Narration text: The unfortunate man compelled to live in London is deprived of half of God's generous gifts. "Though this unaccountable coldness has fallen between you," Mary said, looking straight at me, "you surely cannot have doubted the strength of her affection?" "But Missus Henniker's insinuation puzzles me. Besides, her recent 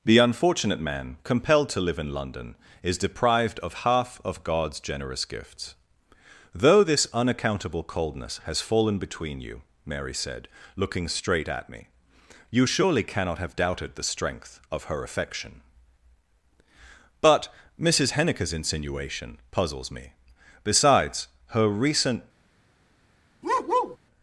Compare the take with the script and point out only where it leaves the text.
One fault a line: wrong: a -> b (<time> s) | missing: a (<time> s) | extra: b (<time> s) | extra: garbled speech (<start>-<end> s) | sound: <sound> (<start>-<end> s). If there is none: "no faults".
sound: bark (23.4-24.0 s)